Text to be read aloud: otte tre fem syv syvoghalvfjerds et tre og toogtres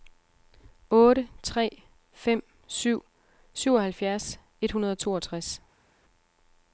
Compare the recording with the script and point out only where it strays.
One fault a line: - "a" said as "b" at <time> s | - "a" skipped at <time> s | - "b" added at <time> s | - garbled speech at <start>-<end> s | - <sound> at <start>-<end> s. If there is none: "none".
- "tre" said as "hundrede" at 4.7 s